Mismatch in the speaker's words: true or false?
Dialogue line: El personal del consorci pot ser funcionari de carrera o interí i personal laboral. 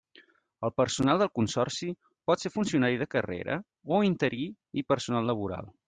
false